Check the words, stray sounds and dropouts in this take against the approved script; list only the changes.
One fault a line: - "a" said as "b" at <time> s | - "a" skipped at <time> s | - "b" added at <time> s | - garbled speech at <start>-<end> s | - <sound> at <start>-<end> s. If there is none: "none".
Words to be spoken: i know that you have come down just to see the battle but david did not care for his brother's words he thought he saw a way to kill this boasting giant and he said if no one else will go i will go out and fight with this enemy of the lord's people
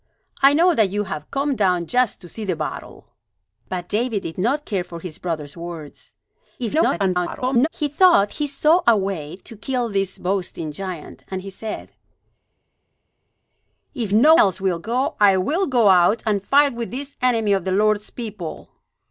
- garbled speech at 6.6-7.7 s
- "one" skipped at 14.4 s